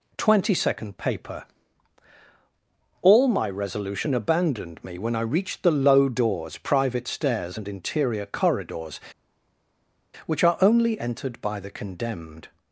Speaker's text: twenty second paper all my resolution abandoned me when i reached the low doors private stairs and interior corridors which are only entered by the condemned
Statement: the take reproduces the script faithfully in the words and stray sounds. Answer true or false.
true